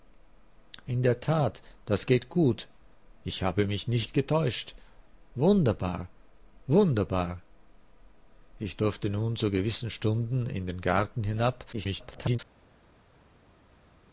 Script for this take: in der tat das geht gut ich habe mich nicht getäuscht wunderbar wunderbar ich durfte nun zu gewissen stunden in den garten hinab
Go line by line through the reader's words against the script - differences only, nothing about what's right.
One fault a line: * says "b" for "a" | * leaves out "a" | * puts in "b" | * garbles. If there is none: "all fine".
* garbles